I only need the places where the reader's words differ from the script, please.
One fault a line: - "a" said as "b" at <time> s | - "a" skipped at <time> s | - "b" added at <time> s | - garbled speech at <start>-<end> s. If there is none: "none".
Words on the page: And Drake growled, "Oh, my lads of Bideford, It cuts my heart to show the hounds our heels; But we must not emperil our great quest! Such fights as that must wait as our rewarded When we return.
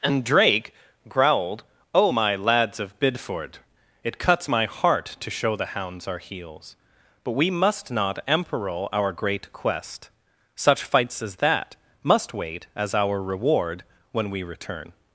- "rewarded" said as "reward" at 13.2 s